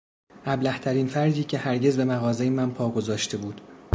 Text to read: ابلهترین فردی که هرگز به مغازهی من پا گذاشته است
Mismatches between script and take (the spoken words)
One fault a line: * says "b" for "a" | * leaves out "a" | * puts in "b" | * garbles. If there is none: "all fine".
* says "بود" for "است"